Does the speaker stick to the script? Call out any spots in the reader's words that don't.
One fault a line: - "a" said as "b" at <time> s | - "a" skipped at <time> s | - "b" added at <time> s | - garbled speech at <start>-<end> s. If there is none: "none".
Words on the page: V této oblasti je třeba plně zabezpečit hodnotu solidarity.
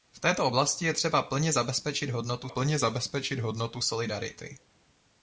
- "plně zabezpečit hodnotu" added at 2.5 s